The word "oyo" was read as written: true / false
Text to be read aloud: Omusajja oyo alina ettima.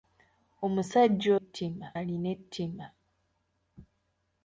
false